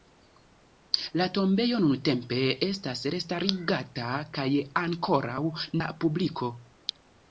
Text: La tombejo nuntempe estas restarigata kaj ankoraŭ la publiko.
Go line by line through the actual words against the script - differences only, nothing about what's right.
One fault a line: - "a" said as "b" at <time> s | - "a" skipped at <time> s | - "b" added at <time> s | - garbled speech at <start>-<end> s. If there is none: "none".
none